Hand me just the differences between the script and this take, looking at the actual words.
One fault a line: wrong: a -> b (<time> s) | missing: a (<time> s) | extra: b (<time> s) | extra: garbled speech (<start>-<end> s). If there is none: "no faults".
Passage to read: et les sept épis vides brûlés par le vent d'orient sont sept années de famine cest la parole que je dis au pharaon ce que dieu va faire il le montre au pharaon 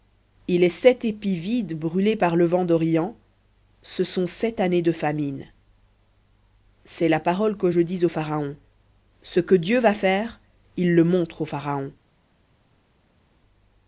extra: ce (3.8 s)